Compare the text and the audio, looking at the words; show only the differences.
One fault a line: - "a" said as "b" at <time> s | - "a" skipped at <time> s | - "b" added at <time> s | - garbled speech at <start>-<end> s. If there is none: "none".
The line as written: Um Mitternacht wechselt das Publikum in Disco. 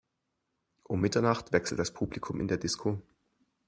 - "der" added at 2.5 s